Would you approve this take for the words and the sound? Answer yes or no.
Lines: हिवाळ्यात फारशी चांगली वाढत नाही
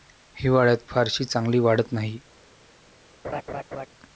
no